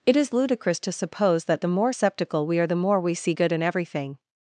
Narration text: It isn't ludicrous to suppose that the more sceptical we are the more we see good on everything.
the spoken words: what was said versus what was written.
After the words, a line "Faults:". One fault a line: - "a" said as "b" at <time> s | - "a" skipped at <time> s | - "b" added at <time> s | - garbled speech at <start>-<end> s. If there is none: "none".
It is ludicrous to suppose that the more sceptical we are the more we see good in everything.
Faults:
- "isn't" said as "is" at 0.2 s
- "on" said as "in" at 3.5 s